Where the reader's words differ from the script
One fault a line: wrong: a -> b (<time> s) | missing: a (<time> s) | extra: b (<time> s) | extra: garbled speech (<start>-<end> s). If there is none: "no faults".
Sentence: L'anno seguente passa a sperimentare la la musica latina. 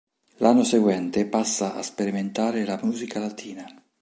missing: la (2.8 s)